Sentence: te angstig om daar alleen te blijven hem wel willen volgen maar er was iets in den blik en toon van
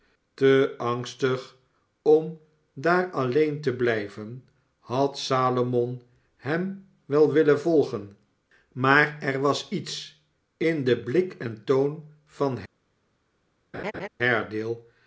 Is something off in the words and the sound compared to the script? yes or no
yes